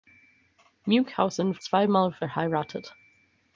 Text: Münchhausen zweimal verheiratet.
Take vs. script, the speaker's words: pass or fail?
pass